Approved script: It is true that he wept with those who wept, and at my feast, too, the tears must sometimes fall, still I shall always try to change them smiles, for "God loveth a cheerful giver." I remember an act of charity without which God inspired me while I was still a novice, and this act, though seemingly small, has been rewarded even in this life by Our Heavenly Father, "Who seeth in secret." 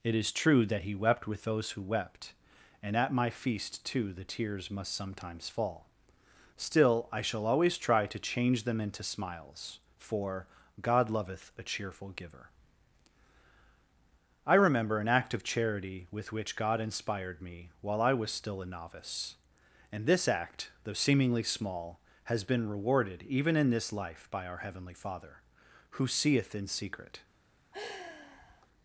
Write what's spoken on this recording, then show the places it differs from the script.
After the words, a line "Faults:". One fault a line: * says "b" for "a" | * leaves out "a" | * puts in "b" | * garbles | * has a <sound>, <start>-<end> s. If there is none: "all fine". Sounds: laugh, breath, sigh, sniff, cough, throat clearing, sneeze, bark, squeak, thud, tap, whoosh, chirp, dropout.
It is true that he wept with those who wept, and at my feast, too, the tears must sometimes fall, still I shall always try to change them into smiles, for "God loveth a cheerful giver." I remember an act of charity with which God inspired me while I was still a novice, and this act, though seemingly small, has been rewarded even in this life by Our Heavenly Father, "Who seeth in secret."
Faults:
* puts in "into"
* says "with" for "without"
* has a sigh, 27.7-28.7 s